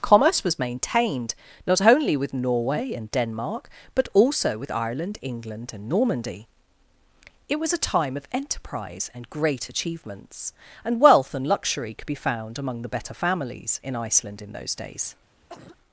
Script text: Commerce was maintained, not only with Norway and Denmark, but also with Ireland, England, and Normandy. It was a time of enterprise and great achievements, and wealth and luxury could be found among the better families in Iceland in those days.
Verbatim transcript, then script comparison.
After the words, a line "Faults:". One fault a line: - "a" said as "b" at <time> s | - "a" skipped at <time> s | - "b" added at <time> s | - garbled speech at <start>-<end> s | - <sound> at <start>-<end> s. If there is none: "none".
Commerce was maintained, not only with Norway and Denmark, but also with Ireland, England, and Normandy. It was a time of enterprise and great achievements, and wealth and luxury could be found among the better families in Iceland in those days.
Faults:
- cough at 15.5-15.8 s